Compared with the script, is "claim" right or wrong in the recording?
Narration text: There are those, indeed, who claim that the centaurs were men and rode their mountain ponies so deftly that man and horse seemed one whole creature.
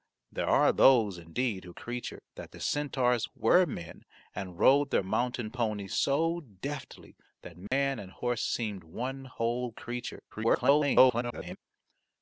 wrong